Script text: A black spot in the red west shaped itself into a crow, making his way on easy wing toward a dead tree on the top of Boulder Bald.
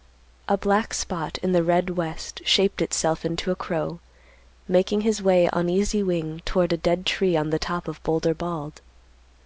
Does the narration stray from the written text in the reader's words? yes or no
no